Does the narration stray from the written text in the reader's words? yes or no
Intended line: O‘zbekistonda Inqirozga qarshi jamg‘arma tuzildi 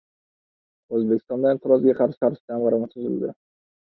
yes